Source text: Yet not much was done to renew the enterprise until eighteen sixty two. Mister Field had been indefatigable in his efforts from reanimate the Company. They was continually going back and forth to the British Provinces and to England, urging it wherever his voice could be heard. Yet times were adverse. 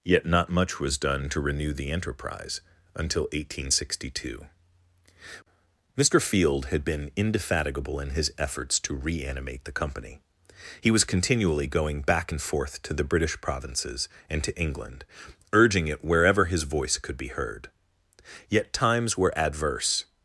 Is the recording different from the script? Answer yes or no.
yes